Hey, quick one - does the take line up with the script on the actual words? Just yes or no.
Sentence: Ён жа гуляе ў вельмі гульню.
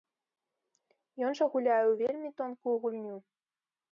no